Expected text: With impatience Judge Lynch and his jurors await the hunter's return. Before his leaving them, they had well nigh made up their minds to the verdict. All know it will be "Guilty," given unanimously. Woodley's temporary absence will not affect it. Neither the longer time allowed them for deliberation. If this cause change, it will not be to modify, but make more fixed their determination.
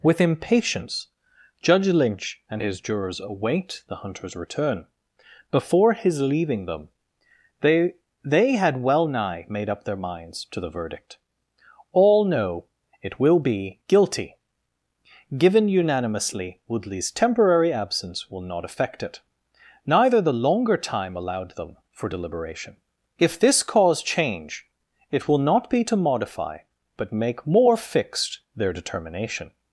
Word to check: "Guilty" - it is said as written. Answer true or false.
true